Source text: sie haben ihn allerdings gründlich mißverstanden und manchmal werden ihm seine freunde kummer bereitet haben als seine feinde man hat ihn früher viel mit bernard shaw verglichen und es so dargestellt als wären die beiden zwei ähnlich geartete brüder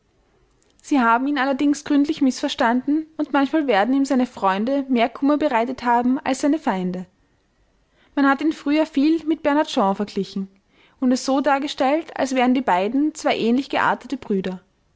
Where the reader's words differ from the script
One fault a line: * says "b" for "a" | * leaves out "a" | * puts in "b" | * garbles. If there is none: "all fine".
* puts in "mehr"